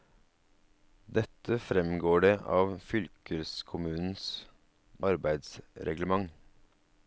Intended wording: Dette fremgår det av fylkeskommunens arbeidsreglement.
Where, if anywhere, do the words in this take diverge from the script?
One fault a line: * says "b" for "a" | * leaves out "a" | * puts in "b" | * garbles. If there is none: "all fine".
all fine